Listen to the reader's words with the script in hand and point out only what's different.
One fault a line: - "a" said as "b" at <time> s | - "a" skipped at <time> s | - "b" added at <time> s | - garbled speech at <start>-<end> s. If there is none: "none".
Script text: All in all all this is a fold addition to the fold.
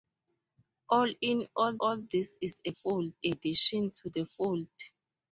none